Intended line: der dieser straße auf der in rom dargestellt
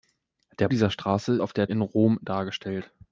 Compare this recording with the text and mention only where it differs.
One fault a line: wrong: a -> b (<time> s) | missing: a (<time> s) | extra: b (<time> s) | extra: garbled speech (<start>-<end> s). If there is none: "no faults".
no faults